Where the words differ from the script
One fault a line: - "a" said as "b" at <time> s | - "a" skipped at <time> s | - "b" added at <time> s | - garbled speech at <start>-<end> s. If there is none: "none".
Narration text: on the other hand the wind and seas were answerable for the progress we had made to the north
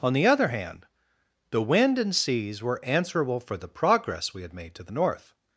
none